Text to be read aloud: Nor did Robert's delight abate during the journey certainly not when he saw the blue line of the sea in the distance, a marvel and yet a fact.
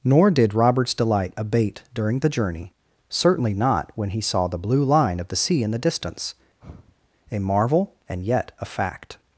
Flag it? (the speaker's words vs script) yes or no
no